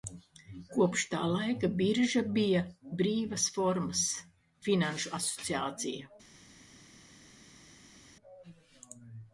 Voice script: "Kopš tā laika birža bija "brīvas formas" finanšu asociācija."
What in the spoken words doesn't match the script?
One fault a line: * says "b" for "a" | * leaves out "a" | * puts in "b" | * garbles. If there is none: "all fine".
all fine